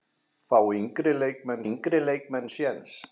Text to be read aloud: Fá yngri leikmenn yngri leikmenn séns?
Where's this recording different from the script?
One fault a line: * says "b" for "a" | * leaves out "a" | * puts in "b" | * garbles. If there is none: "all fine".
all fine